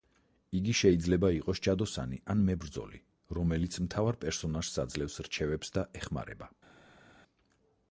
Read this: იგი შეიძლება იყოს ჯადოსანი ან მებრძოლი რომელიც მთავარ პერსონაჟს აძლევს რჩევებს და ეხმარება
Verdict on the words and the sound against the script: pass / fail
pass